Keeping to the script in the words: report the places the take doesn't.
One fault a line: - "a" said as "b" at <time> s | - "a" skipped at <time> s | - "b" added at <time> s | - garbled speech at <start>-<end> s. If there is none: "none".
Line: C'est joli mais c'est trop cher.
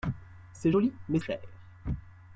- "c'est trop" skipped at 1.2 s